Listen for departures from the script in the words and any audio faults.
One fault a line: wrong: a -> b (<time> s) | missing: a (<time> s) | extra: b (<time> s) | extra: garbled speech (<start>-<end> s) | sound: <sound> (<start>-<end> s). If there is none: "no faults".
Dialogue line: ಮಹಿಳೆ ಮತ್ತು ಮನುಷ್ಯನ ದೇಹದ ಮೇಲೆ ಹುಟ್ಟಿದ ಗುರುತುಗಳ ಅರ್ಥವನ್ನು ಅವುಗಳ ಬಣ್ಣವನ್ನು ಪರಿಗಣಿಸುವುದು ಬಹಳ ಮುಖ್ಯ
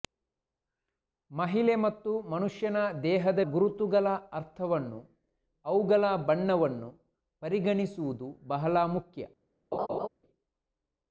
missing: ಮೇಲೆ ಹುಟ್ಟಿದ (3.4 s)
sound: laugh (9.7-10.1 s)